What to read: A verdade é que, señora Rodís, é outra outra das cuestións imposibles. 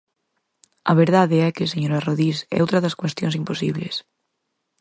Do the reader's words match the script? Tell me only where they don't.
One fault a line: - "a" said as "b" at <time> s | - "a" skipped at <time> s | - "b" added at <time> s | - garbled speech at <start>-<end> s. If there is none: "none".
- "outra" skipped at 2.8 s